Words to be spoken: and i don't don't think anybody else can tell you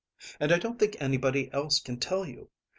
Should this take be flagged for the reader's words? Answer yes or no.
yes